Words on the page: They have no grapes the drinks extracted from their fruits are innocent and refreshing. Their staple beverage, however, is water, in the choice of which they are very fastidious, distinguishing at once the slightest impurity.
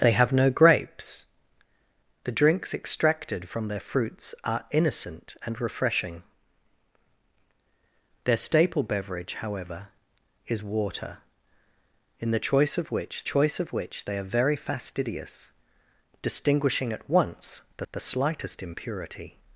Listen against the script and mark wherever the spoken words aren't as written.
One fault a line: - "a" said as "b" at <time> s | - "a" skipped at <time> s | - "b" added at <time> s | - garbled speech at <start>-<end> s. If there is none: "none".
- "choice of which" added at 13.3 s
- "the" added at 17.9 s